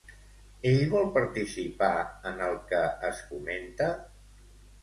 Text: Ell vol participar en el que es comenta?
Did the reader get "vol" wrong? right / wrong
right